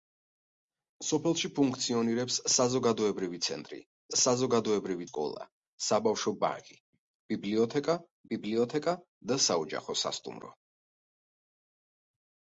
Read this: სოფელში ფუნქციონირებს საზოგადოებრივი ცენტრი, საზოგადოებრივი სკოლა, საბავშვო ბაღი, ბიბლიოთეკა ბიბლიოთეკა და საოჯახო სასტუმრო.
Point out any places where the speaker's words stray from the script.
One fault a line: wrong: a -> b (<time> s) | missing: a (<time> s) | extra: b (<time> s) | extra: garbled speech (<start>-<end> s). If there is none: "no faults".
no faults